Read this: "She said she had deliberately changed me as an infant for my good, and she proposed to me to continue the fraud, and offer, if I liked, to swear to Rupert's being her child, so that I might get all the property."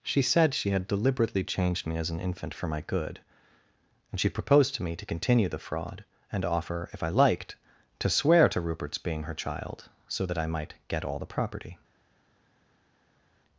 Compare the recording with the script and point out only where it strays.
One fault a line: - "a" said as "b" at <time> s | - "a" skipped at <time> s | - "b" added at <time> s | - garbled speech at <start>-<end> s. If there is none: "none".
none